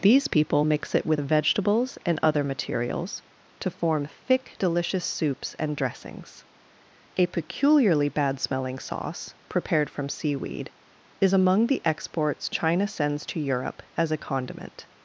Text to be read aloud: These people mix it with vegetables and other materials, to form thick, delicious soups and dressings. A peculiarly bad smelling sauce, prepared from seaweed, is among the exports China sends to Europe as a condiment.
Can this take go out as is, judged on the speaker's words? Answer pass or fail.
pass